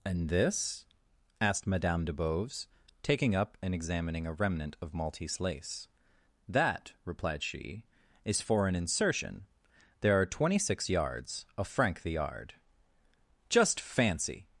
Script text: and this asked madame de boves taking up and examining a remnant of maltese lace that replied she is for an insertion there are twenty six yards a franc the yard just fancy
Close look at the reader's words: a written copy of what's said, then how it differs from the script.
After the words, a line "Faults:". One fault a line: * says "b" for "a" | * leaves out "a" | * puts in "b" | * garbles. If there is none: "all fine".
and this asked madame de boves taking up and examining a remnant of maltese lace that replied she is for an insertion there are twenty six yards a franc the yard just fancy
Faults:
all fine